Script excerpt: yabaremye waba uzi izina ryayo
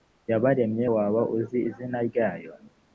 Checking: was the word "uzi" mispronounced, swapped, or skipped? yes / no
no